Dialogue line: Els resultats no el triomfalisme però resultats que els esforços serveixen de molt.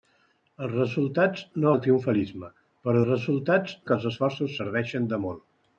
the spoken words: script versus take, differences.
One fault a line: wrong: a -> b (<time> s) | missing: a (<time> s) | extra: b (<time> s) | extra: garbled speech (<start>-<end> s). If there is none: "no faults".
no faults